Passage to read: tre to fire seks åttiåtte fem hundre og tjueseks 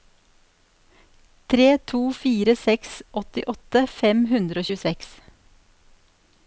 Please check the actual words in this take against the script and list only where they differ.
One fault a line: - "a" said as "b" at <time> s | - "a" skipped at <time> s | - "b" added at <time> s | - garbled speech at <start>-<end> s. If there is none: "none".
none